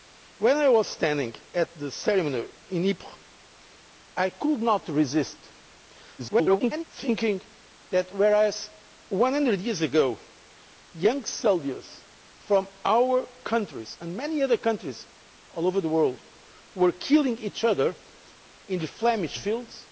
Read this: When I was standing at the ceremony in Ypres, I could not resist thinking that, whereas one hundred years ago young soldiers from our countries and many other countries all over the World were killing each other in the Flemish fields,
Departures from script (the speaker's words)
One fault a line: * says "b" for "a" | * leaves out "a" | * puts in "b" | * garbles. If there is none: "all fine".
* garbles